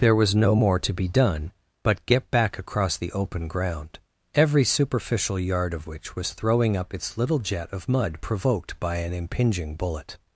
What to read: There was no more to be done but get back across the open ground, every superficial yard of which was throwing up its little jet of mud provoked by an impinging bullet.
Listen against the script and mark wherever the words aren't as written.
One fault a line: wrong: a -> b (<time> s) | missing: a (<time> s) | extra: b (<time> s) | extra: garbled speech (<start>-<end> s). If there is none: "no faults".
no faults